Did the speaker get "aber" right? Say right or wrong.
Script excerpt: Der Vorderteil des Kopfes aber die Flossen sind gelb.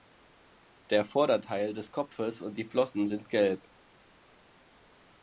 wrong